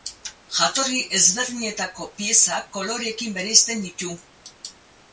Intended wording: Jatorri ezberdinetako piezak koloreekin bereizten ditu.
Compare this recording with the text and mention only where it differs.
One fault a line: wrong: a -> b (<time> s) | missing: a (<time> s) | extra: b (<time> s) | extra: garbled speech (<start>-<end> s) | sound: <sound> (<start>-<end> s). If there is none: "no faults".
no faults